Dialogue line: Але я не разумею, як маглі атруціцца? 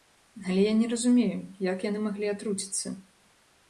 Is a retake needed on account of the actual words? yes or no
yes